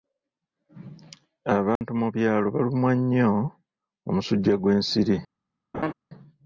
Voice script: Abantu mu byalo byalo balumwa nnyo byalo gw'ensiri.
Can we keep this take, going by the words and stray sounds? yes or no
no